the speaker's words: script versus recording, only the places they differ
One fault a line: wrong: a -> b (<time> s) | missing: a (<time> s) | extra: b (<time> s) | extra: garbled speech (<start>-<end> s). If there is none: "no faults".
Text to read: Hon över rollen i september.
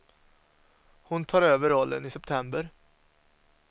extra: tar (1.2 s)